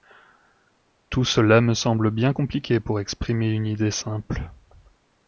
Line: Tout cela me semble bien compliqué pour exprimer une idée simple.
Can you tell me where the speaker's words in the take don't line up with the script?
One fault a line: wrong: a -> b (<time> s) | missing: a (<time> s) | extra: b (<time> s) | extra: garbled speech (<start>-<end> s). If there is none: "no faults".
no faults